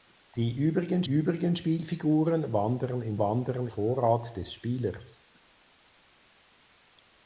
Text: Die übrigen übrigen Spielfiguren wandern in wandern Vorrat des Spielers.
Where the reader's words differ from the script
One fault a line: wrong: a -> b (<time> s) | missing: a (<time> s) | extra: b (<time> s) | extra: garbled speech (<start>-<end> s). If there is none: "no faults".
no faults